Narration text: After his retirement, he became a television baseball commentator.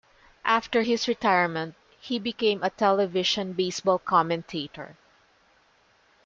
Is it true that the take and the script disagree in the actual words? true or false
false